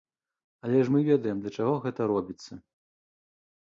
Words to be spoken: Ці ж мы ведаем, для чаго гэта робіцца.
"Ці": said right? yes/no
no